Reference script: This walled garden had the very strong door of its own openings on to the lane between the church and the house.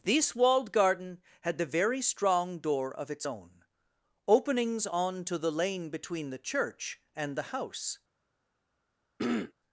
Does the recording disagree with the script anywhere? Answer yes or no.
no